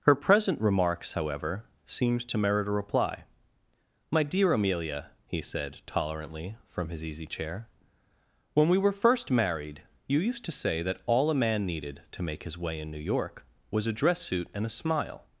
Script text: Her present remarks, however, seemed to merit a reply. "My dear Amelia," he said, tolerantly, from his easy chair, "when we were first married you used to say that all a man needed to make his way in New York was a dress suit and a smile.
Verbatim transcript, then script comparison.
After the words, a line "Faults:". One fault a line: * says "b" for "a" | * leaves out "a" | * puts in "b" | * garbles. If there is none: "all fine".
Her present remarks, however, seemed to merit a reply. "My dear Amelia," he said, tolerantly, from his easy chair, "when we were first married you used to say that all a man needed to make his way in New York was a dress suit and a smile.
Faults:
all fine